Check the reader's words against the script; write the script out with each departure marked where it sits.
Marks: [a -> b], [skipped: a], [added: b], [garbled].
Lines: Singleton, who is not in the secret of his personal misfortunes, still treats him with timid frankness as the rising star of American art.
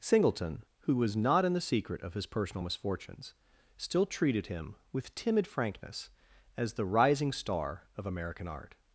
Singleton, who [is -> was] not in the secret of his personal misfortunes, still [treats -> treated] him with timid frankness as the rising star of American art.